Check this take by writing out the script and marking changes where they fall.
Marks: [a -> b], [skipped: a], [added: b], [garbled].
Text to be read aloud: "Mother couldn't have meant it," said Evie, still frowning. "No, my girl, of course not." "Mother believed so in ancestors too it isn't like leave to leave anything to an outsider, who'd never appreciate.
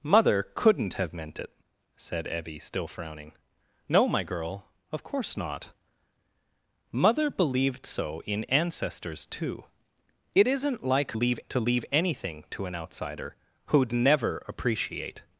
"Mother couldn't have meant it," said Evie, still frowning. "No, my girl, of course not." "Mother believed so in ancestors too it isn't like leave to leave anything to an outsider, who'd never appreciate.